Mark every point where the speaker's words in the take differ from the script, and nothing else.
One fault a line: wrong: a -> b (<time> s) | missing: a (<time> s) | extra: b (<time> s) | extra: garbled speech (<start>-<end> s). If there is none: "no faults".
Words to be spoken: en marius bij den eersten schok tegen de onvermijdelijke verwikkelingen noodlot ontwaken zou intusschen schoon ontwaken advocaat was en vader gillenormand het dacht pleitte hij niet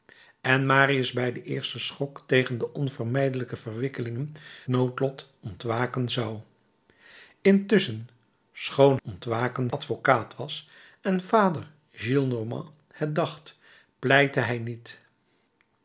no faults